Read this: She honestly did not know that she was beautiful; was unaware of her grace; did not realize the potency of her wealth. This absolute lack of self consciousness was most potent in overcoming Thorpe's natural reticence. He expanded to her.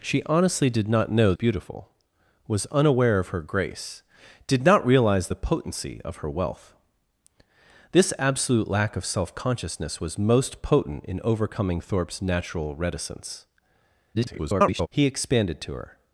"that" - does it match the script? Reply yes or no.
no